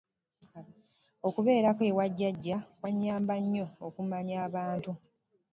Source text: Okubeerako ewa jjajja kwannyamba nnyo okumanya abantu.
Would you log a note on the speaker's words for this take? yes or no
no